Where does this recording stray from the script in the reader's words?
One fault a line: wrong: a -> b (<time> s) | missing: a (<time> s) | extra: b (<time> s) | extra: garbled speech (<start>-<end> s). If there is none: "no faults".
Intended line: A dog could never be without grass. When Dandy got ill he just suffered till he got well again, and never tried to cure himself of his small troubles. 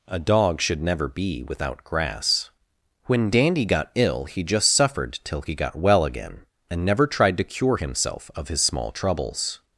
wrong: could -> should (0.6 s)